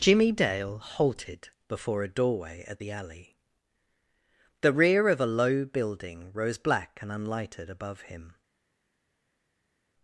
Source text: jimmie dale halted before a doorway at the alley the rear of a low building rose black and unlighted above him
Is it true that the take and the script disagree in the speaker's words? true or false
false